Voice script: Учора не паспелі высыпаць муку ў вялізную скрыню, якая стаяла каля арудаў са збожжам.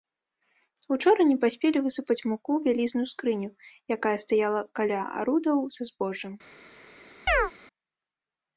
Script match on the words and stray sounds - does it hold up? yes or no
no